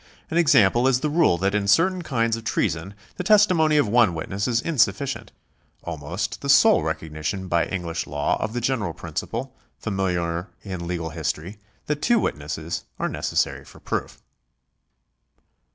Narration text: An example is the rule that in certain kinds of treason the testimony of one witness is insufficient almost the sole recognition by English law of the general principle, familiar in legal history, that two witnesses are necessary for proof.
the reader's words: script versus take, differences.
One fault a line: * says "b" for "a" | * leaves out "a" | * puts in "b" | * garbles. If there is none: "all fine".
all fine